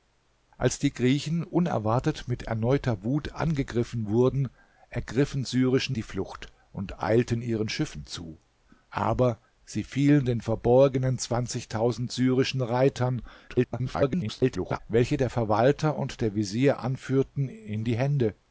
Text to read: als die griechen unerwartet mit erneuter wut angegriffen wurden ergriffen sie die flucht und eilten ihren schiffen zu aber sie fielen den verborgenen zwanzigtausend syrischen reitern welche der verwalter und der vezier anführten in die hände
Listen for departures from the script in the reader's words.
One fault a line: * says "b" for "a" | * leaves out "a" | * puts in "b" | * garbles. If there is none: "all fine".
* says "syrischen" for "sie"
* garbles